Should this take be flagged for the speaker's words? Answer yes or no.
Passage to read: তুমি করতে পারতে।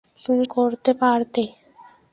no